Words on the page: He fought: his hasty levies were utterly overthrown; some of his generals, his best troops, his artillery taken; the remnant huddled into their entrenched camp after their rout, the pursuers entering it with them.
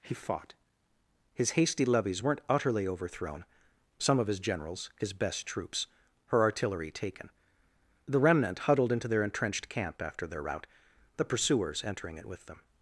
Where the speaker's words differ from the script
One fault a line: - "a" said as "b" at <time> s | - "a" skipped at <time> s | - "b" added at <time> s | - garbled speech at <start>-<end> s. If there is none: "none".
- "were" said as "weren't" at 2.2 s
- "his" said as "her" at 6.3 s